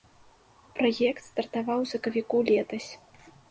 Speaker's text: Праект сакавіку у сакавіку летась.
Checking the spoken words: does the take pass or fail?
fail